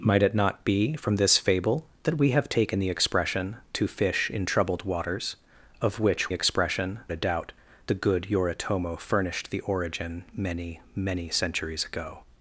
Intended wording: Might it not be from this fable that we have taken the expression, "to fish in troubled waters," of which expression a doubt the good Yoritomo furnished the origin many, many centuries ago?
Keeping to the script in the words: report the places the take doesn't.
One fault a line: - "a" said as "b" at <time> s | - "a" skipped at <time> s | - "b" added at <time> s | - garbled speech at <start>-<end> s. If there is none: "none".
none